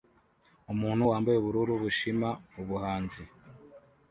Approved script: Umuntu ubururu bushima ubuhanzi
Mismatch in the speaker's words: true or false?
true